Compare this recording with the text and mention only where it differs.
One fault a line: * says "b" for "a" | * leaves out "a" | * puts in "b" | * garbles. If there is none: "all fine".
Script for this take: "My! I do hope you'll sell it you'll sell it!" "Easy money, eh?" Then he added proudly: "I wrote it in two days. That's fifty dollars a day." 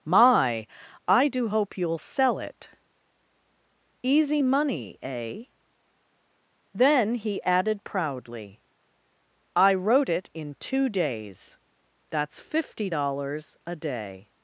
* leaves out "you'll sell it"